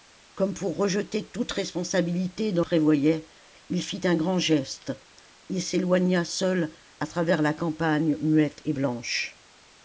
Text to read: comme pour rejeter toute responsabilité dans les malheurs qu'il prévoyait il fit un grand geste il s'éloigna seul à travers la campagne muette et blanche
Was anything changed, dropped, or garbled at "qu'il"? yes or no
yes